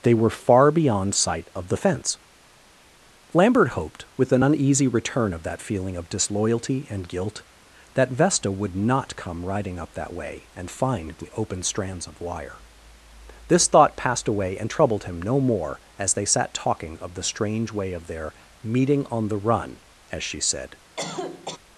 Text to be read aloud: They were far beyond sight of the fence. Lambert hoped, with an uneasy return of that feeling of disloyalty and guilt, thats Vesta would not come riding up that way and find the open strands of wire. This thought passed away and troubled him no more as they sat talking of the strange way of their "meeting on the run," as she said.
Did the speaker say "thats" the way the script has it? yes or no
no